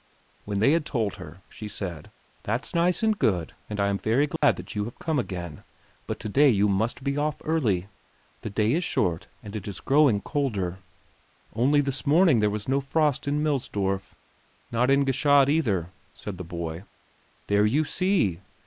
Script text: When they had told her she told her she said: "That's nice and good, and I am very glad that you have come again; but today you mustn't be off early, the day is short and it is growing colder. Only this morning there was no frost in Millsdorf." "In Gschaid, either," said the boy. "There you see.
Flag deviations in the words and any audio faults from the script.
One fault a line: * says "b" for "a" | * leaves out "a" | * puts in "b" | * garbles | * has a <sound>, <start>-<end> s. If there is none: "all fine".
* leaves out "told her she"
* has a dropout, 4.4-4.4 s
* says "must" for "mustn't"
* puts in "Not"